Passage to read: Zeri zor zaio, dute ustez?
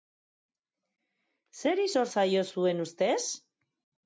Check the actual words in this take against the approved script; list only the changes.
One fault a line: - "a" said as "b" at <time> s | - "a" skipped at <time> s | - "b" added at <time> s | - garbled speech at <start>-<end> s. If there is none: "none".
- "dute" said as "zuen" at 2.5 s